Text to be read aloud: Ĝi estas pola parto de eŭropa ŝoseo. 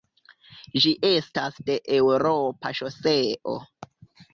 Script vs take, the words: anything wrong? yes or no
yes